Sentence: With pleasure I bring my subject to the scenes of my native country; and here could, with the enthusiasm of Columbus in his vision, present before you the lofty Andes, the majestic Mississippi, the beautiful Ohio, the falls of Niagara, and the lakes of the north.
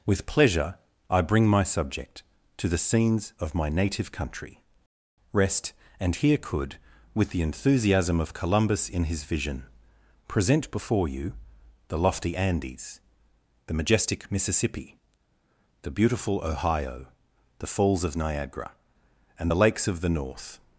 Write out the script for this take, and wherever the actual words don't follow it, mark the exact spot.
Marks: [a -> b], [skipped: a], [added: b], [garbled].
With pleasure I bring my subject to the scenes of my native country; [added: rest] and here could, with the enthusiasm of Columbus in his vision, present before you the lofty Andes, the majestic Mississippi, the beautiful Ohio, the falls of Niagara, and the lakes of the north.